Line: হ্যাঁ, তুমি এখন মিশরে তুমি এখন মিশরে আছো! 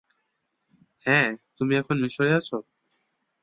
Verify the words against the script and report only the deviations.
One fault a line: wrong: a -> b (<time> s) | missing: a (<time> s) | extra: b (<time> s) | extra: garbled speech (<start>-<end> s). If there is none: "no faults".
missing: তুমি এখন মিশরে (2.3 s)